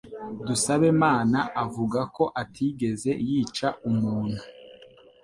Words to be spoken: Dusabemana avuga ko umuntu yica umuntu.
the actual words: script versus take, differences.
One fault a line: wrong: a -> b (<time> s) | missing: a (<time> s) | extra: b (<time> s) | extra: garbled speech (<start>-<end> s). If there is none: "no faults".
wrong: umuntu -> atigeze (2.4 s)